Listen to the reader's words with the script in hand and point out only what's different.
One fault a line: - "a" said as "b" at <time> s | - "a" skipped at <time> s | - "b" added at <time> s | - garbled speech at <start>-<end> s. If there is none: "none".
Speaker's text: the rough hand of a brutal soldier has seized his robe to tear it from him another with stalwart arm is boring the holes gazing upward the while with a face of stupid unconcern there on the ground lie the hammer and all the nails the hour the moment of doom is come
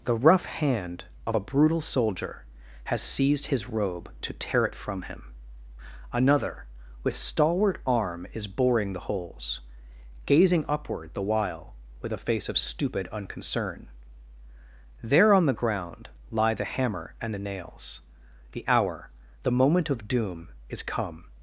- "all" skipped at 17.3 s